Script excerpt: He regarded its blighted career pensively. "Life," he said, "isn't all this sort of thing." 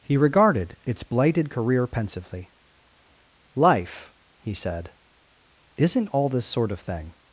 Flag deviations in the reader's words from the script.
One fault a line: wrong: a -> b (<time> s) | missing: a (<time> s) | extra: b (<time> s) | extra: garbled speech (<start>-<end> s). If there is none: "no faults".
no faults